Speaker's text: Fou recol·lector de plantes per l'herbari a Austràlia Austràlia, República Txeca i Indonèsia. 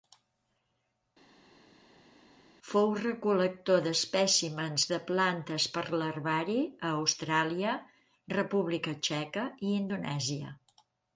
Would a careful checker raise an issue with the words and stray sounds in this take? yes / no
yes